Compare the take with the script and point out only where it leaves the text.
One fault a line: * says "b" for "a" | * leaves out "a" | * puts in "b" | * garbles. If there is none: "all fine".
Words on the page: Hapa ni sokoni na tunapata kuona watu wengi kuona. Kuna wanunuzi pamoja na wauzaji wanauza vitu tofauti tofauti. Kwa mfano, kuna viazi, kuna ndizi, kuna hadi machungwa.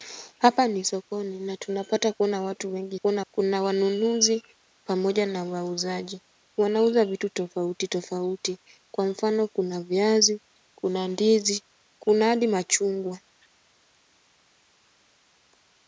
all fine